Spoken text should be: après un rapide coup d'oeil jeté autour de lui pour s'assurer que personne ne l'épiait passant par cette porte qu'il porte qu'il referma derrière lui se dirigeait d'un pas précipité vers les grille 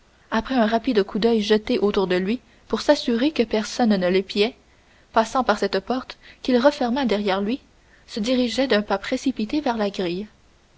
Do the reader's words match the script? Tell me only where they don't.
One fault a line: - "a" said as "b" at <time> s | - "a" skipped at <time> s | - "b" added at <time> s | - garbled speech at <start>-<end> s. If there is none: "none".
- "porte qu'il" skipped at 6.6 s
- "les" said as "la" at 9.8 s